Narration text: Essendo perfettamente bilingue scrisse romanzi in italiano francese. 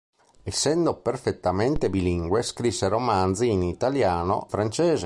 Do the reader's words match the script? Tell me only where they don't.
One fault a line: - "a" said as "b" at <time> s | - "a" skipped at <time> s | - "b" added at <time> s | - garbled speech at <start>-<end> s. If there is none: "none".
none